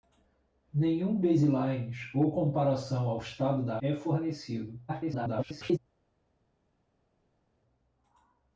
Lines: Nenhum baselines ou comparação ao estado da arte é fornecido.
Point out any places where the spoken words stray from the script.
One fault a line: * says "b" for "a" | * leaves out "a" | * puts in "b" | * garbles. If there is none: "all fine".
* leaves out "arte"
* garbles